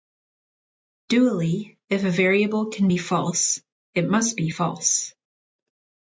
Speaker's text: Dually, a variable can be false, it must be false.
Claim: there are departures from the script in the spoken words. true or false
true